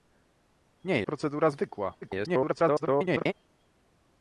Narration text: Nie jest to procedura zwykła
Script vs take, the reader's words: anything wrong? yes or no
yes